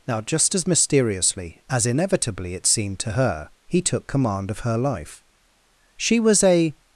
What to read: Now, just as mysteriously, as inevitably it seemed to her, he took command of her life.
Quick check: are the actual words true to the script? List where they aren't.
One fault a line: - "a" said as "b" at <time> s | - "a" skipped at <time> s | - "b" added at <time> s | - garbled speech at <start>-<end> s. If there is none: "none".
- "She was a" added at 6.0 s